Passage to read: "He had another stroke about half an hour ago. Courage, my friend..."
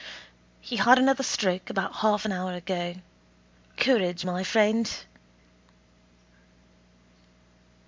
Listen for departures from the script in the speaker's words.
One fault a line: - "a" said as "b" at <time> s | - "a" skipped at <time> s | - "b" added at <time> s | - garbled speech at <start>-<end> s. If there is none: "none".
none